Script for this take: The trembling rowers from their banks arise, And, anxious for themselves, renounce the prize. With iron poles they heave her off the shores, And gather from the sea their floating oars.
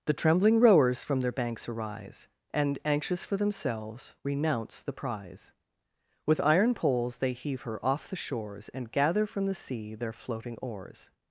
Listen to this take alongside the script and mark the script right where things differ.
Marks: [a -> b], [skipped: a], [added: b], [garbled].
The trembling rowers from their banks arise, And, anxious for themselves, renounce the prize. With iron poles they heave her off the shores, And gather from the sea their floating oars.